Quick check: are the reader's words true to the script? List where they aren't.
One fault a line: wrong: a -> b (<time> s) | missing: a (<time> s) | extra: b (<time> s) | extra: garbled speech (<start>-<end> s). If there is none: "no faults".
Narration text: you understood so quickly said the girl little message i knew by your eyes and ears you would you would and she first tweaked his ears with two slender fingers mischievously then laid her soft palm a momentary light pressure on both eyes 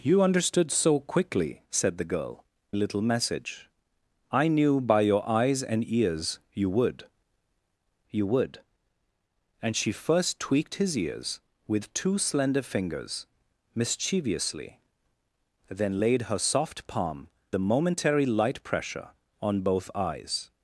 no faults